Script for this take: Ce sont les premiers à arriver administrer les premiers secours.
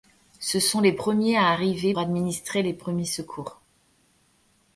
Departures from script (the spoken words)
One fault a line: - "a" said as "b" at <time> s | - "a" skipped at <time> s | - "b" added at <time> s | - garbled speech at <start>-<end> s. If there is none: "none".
none